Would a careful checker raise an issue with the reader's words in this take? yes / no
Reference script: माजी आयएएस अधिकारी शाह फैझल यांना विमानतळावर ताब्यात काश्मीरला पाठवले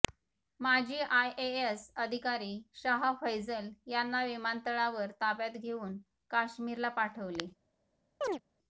yes